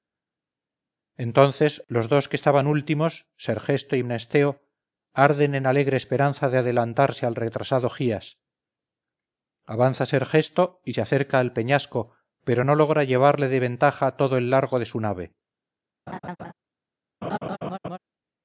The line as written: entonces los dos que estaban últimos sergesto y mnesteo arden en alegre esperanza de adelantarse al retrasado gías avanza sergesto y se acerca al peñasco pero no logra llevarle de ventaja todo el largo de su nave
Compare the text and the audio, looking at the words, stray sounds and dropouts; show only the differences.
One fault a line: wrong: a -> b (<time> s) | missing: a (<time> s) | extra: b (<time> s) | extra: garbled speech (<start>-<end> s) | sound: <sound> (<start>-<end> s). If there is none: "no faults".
sound: laugh (16.1-16.5 s)
sound: laugh (17.2-18.0 s)